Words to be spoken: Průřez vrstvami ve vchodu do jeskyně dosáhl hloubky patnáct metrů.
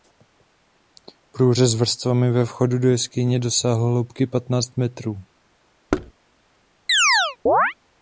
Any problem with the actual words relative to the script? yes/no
no